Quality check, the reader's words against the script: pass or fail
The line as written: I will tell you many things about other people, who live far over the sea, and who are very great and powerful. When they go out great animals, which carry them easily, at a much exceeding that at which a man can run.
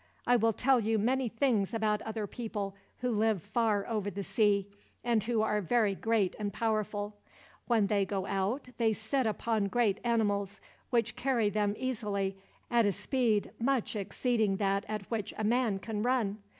fail